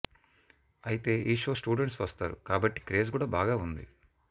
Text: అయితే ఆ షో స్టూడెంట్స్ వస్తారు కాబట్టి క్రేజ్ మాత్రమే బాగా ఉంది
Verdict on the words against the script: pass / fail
fail